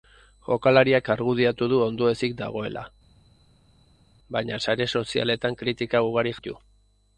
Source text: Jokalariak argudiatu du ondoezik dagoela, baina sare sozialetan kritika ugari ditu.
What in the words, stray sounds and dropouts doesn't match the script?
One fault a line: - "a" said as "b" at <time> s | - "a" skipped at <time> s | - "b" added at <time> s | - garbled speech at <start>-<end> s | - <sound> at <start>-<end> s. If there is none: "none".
none